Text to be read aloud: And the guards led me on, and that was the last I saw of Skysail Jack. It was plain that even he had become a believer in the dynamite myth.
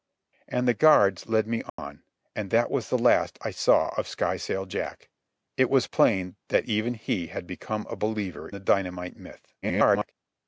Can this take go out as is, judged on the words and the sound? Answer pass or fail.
fail